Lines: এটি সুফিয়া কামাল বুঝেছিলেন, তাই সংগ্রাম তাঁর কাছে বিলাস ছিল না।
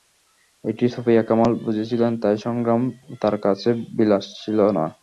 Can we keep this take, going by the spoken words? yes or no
yes